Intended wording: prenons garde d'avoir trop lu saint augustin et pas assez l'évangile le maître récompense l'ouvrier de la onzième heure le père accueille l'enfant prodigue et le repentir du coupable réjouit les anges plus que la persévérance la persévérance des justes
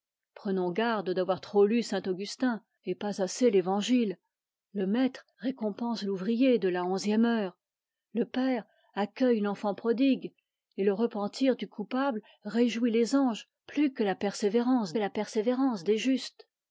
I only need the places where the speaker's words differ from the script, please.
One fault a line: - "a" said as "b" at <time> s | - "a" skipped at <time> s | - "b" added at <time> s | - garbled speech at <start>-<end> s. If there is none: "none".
none